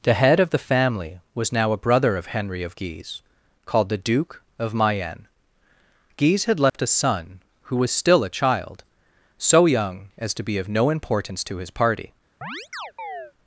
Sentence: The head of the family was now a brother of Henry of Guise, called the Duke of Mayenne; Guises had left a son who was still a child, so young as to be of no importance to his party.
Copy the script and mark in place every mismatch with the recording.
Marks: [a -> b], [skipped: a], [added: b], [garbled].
The head of the family was now a brother of Henry of Guise, called the Duke of Mayenne; [Guises -> Guise] had left a son who was still a child, so young as to be of no importance to his party.